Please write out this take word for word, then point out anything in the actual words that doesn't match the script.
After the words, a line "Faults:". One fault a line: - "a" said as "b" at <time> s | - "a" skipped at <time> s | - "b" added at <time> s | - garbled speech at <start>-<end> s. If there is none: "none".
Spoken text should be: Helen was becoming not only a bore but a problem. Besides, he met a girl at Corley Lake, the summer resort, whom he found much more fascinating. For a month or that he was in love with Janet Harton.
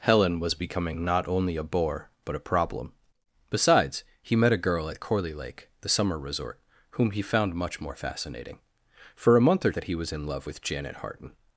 Helen was becoming not only a bore but a problem. Besides, he met a girl at Corley Lake, the summer resort, whom he found much more fascinating. For a month or that he was in love with Janet Harton.
Faults:
none